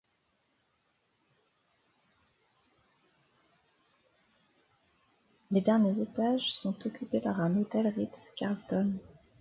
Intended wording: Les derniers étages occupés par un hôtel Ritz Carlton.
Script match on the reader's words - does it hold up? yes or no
no